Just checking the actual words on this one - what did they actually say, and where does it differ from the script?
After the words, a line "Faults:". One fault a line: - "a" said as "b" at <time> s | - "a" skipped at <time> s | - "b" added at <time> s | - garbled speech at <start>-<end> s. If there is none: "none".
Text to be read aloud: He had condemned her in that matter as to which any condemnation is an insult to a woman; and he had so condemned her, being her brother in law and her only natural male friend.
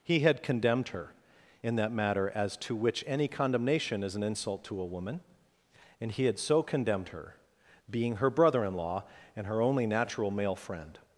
He had condemned her in that matter as to which any condemnation is an insult to a woman; and he had so condemned her, being her brother in law and her only natural male friend.
Faults:
none